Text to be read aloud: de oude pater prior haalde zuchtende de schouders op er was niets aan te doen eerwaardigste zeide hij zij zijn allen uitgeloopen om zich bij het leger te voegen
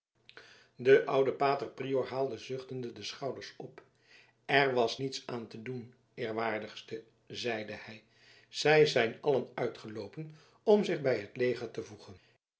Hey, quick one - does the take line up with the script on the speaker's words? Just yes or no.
yes